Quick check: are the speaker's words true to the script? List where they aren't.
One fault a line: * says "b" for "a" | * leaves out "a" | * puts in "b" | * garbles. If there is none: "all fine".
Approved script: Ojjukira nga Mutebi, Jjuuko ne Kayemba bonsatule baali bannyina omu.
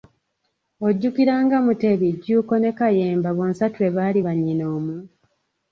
all fine